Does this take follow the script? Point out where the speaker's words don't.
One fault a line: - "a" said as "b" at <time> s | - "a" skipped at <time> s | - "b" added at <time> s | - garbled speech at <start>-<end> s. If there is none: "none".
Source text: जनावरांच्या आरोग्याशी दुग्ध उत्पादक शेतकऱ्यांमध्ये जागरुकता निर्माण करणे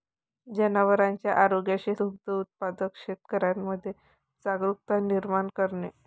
none